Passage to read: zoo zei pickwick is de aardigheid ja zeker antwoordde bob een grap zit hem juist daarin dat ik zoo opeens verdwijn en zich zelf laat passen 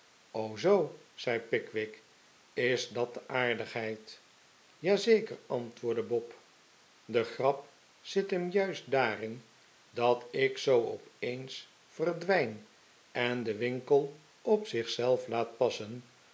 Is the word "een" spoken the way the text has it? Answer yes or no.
no